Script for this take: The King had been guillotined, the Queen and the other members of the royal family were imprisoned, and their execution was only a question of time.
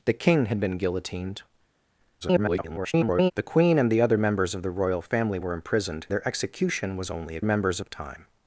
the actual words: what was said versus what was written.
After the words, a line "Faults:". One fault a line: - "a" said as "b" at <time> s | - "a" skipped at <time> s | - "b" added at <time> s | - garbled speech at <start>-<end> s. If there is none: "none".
The King had been guillotined, [garbled] the Queen and the other members of the royal family were imprisoned, their execution was only a members of time.
Faults:
- garbled speech at 2.2-3.3 s
- "and" skipped at 6.1 s
- "question" said as "members" at 7.4 s